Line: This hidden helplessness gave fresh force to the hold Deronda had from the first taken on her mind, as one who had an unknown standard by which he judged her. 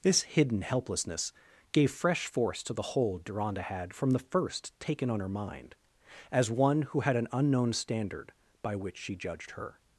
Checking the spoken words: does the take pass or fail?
fail